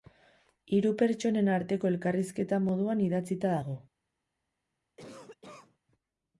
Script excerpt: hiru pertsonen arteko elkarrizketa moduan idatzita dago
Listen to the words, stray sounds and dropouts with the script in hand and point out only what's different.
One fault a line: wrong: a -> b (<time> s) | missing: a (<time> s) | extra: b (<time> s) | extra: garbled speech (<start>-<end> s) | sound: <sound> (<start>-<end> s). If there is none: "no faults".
sound: cough (5.0-5.8 s)